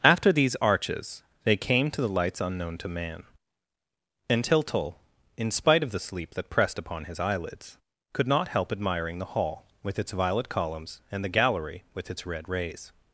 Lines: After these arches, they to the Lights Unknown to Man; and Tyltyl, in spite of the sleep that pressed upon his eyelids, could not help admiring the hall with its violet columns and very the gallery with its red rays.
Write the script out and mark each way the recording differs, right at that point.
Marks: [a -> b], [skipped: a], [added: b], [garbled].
After these arches, they [added: came] to the Lights Unknown to Man; and Tyltyl, in spite of the sleep that pressed upon his eyelids, could not help admiring the hall with its violet columns and [skipped: very] the gallery with its red rays.